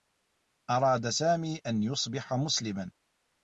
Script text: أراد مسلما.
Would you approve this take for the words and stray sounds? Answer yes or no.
no